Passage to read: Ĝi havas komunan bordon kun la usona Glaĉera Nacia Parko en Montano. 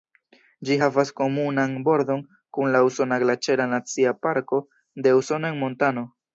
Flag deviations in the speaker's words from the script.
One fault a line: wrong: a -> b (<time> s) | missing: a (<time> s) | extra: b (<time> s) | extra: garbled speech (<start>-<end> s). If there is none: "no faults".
extra: de Usono (5.0 s)